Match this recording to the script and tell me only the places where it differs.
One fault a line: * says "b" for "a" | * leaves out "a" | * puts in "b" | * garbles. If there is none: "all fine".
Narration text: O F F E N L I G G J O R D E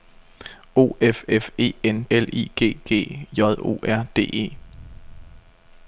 all fine